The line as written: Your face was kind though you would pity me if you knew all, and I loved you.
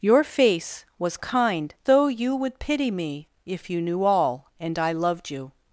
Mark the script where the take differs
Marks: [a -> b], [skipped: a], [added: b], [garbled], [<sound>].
Your face was kind though you would pity me if you knew all, and I loved you.